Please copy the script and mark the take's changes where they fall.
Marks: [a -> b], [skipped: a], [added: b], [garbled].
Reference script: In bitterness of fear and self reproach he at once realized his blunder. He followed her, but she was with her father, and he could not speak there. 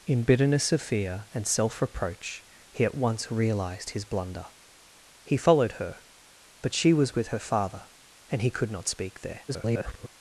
In bitterness of fear and self reproach he at once realized his blunder. He followed her, but she was with her father, and he could not speak there. [garbled]